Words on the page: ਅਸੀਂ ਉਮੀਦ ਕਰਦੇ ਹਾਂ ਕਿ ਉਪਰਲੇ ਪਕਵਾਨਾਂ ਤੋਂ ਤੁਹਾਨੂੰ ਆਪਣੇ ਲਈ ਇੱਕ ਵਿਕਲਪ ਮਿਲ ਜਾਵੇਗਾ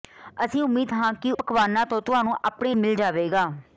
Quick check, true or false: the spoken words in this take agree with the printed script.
false